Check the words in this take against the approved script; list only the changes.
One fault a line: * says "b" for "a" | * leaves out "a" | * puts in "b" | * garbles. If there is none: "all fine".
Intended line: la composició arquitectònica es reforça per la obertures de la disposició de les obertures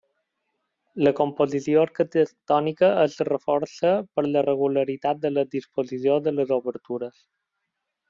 * says "regularitat" for "obertures"